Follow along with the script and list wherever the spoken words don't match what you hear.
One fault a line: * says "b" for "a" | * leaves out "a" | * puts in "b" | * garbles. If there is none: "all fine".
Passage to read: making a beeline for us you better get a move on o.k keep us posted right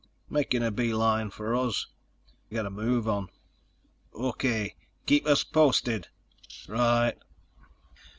* leaves out "you better"